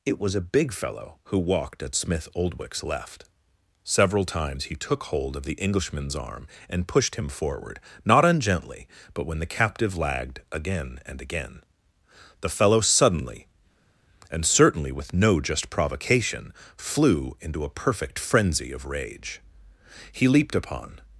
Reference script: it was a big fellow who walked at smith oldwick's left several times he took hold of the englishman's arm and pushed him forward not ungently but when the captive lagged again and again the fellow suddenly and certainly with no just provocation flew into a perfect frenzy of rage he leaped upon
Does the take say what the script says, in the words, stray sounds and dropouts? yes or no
yes